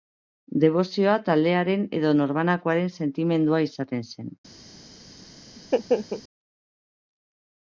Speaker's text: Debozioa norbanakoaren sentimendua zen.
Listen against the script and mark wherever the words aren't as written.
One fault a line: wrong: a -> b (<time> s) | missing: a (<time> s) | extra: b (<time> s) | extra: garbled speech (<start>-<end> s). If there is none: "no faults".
extra: taldearen edo (1.3 s)
extra: izaten (3.7 s)